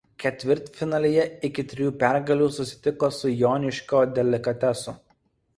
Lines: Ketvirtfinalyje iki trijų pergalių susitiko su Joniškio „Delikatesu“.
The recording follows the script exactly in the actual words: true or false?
true